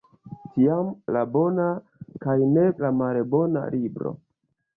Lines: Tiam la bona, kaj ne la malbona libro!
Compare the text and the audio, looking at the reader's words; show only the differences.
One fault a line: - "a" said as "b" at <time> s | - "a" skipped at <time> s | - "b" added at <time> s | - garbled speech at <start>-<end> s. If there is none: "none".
none